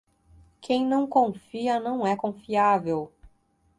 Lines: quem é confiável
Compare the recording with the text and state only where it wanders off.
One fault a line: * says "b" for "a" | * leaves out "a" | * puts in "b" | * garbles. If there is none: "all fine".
* puts in "não confia não"